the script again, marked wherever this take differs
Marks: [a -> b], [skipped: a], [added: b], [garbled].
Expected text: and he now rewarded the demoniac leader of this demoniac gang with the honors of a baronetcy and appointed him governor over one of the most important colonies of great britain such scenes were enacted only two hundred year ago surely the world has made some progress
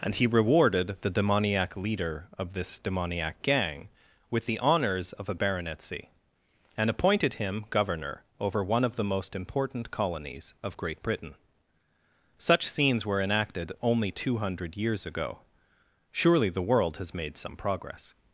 and he [skipped: now] rewarded the demoniac leader of this demoniac gang with the honors of a baronetcy and appointed him governor over one of the most important colonies of great britain such scenes were enacted only two hundred [year -> years] ago surely the world has made some progress